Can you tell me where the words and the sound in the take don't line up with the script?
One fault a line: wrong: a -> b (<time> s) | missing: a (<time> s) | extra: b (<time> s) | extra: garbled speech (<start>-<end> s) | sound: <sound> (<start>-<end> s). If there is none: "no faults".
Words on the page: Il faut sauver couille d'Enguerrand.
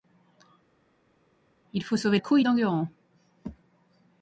no faults